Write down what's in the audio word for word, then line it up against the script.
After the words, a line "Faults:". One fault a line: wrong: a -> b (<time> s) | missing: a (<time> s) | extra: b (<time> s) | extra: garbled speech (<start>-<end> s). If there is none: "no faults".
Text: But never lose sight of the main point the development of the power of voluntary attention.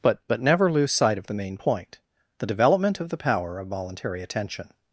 But but never lose sight of the main point the development of the power of voluntary attention.
Faults:
extra: but (0.3 s)